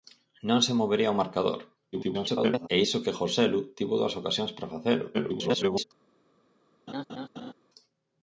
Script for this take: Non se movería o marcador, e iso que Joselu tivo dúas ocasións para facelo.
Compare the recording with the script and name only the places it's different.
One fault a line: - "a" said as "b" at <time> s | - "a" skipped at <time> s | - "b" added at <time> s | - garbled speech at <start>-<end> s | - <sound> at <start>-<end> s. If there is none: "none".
- garbled speech at 1.9-2.7 s
- garbled speech at 5.1-5.8 s
- laugh at 6.9-7.5 s